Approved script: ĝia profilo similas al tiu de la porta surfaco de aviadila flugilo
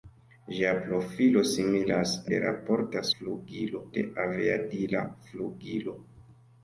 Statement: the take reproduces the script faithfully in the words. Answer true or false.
false